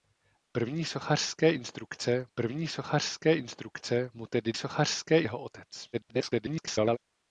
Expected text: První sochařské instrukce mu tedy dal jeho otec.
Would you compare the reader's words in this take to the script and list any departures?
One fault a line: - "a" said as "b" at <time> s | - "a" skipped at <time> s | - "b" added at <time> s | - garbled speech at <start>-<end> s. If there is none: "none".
- "první sochařské instrukce" added at 2.3 s
- "dal" said as "sochařské" at 4.5 s
- garbled speech at 5.9-7.0 s